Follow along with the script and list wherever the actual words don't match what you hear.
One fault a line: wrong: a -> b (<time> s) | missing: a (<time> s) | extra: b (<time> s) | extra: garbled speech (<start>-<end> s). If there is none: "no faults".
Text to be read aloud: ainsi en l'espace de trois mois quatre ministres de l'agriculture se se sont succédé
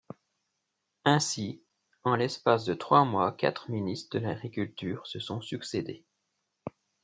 missing: se (5.2 s)